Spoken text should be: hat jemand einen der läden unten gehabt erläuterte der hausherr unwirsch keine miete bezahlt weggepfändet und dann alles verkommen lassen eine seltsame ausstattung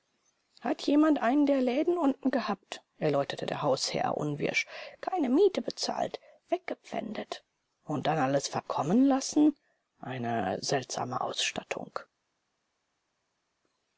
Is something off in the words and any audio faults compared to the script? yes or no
no